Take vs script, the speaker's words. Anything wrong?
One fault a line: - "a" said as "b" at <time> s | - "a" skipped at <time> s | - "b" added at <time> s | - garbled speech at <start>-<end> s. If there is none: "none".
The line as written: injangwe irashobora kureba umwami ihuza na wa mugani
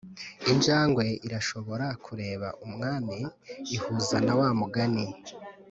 none